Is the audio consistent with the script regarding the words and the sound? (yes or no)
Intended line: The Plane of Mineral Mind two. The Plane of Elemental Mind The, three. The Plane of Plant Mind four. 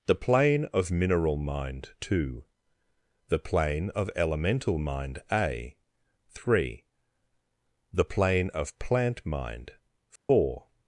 no